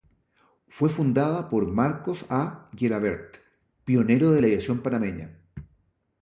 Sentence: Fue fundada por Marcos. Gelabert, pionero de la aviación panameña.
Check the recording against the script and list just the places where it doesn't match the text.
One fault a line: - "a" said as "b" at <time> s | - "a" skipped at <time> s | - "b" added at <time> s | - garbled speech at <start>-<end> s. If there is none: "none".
- "A" added at 2.3 s